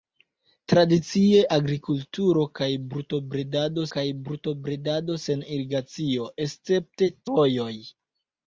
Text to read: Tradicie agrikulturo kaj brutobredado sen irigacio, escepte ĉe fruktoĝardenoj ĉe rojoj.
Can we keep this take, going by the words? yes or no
no